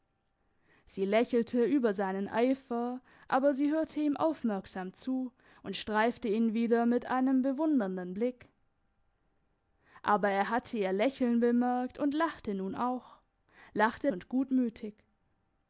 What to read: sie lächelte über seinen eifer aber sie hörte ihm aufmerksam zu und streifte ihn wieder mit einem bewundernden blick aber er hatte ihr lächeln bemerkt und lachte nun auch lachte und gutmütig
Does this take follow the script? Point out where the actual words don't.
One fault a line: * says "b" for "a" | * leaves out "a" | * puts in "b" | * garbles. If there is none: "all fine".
all fine